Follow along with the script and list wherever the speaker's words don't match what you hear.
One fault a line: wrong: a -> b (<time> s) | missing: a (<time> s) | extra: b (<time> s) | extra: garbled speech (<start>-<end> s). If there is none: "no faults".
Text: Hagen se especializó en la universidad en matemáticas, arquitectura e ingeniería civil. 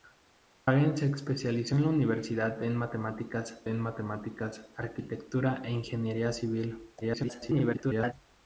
extra: en matemáticas (3.7 s)
extra: garbled speech (7.0-8.1 s)